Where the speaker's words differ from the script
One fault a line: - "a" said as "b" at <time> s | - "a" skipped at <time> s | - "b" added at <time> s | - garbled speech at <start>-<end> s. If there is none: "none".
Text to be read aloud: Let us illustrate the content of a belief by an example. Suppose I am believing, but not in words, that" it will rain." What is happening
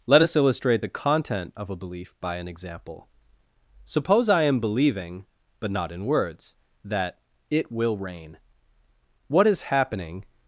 none